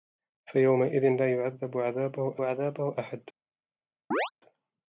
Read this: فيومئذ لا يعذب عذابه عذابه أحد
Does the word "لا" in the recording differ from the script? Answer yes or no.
no